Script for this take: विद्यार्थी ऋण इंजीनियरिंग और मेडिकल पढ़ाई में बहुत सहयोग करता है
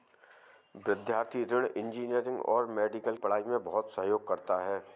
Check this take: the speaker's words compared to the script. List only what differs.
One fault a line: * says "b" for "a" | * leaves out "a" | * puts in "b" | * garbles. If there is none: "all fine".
all fine